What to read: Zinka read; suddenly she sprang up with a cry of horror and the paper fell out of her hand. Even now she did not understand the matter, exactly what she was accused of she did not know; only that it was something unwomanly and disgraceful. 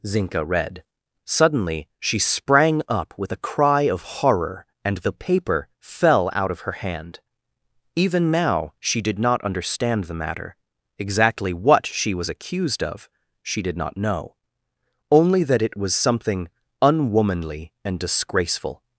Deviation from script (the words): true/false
false